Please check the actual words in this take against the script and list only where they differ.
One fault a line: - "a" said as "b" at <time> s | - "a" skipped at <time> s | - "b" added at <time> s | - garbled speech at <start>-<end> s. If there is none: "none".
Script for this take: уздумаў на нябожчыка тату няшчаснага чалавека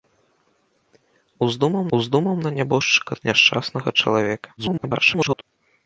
- "уздумаў" added at 2.0 s
- "тату" skipped at 3.1 s
- garbled speech at 4.6-5.4 s